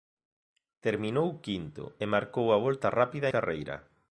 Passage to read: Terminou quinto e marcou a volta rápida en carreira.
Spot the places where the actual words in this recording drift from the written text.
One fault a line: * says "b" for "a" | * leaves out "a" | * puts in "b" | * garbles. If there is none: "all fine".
* leaves out "en"